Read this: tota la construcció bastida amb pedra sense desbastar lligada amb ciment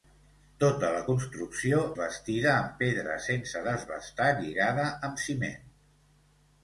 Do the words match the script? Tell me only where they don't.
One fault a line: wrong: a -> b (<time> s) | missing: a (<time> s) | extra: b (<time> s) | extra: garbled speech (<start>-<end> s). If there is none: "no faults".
no faults